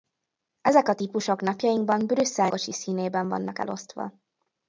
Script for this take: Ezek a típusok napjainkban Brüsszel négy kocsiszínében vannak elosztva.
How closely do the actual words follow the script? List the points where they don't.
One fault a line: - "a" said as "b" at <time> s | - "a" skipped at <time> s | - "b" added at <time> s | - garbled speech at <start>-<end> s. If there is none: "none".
- "négy" skipped at 2.5 s